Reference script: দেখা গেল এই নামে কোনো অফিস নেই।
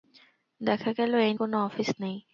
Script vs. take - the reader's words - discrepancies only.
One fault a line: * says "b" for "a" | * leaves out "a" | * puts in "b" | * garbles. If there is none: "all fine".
* leaves out "নামে"